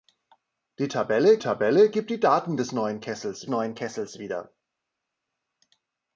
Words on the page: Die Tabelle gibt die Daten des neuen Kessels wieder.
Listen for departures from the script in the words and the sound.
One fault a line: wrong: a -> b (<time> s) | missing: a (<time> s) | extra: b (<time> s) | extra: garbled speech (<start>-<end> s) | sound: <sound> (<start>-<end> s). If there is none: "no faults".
extra: Tabelle (1.4 s)
extra: neuen Kessels (3.5 s)